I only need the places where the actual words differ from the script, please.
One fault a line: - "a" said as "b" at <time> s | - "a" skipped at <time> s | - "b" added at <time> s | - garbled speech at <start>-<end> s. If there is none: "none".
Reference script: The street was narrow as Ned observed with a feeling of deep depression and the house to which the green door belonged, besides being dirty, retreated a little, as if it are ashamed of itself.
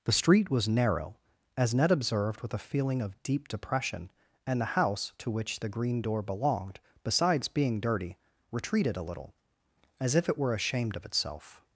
- "are" said as "were" at 10.4 s